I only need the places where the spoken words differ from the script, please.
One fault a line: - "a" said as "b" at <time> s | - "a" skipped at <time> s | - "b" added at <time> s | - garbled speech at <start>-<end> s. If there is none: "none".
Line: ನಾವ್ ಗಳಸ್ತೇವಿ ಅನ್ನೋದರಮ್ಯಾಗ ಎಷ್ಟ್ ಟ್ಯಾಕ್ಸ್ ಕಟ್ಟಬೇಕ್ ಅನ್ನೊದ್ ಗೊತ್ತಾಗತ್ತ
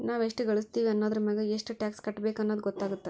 - "ಎಷ್ಟ" added at 0.2 s